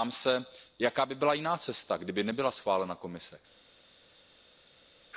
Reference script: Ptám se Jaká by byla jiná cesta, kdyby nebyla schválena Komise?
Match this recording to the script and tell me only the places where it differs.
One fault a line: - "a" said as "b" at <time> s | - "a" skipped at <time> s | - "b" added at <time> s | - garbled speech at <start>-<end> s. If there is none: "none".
none